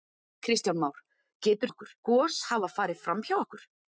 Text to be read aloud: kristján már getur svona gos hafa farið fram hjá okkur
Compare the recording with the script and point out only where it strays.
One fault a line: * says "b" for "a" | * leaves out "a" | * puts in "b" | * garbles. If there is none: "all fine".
* says "okkur" for "svona"